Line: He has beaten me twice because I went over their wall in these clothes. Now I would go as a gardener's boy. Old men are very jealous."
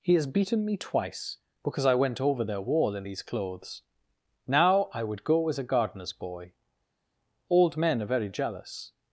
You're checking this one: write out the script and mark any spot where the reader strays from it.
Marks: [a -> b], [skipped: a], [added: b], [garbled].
He has beaten me twice because I went over their wall in these clothes. Now I would go as a gardener's boy. Old men are very jealous."